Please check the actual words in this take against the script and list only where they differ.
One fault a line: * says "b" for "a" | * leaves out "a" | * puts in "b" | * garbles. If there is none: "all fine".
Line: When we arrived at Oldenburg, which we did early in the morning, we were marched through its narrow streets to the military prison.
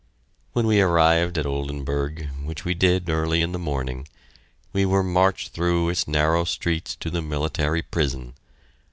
all fine